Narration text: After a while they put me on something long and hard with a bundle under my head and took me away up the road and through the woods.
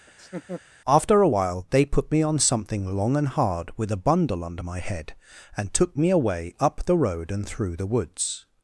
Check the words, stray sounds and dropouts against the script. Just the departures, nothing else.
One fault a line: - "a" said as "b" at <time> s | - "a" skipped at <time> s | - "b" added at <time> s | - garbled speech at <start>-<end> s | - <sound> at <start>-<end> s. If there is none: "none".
- laugh at 0.1-0.6 s